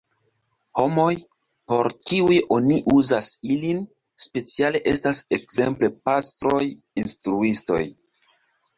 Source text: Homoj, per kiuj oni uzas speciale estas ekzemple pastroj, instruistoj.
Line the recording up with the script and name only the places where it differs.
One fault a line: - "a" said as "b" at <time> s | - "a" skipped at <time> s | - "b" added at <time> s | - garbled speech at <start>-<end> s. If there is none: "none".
- "per" said as "por" at 1.7 s
- "ilin" added at 3.5 s